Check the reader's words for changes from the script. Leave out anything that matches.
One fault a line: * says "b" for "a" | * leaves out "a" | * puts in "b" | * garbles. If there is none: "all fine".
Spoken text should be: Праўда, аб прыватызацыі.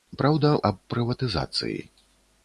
all fine